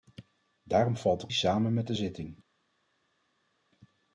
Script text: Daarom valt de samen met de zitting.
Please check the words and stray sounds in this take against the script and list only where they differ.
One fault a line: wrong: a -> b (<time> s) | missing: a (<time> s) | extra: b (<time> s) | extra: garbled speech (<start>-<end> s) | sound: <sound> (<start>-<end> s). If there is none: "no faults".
no faults